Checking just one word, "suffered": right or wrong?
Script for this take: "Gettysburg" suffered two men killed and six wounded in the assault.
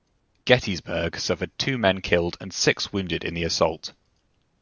right